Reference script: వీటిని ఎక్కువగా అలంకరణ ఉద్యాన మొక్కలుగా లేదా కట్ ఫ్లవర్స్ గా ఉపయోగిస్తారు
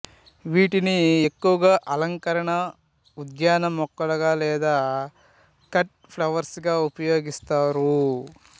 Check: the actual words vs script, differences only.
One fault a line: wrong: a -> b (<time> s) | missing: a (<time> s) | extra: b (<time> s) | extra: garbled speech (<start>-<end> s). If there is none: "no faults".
no faults